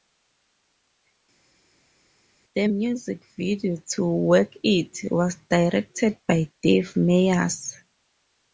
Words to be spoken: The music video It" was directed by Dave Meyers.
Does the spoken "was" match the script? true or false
true